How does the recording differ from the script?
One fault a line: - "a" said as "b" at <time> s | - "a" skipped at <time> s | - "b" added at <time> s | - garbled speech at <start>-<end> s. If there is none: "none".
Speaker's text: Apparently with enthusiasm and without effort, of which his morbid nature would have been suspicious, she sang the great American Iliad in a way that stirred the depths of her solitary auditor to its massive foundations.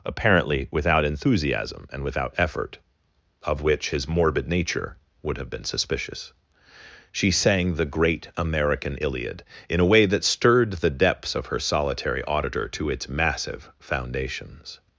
- "with" said as "without" at 0.7 s